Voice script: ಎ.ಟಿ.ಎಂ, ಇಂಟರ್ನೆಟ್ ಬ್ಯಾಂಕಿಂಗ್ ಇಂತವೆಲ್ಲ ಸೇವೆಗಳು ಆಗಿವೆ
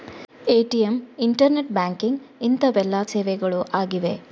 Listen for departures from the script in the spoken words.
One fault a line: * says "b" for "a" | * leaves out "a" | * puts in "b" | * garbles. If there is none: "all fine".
all fine